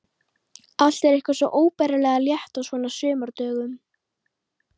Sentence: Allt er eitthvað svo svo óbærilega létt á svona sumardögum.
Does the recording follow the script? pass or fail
fail